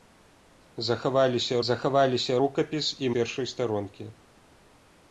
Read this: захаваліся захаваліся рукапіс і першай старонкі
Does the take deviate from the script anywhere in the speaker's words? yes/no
no